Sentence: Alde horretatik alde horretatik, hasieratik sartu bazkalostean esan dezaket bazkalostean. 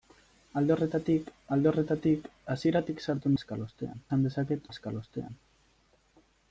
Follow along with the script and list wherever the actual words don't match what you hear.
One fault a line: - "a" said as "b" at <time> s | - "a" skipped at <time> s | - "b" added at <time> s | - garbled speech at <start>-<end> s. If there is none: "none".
none